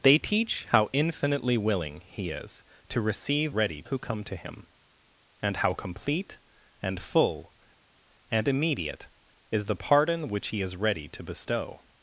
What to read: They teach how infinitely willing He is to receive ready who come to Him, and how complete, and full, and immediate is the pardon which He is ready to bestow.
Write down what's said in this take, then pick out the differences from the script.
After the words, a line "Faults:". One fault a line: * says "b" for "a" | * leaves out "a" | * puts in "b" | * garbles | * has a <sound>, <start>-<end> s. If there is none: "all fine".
They teach how infinitely willing He is to receive ready who come to Him, and how complete, and full, and immediate is the pardon which He is ready to bestow.
Faults:
all fine